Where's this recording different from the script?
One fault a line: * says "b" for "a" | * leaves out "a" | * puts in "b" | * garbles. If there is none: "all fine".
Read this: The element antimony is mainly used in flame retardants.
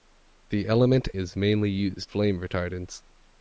* leaves out "antimony"
* leaves out "in"